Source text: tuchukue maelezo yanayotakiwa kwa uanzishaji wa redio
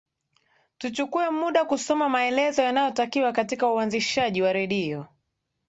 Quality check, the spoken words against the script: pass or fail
fail